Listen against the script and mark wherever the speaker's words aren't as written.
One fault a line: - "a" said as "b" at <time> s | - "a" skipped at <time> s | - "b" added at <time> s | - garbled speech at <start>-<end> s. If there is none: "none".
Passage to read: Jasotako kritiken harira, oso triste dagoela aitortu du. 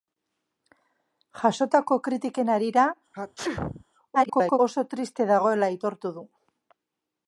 - garbled speech at 4.1-4.6 s